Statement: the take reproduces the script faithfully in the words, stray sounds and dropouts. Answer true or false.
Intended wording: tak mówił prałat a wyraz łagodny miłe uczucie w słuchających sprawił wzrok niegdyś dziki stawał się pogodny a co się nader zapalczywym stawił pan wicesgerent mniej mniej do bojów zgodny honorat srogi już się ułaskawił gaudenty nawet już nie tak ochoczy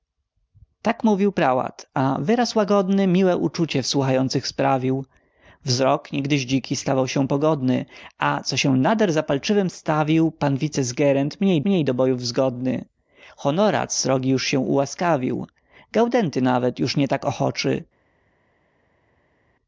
true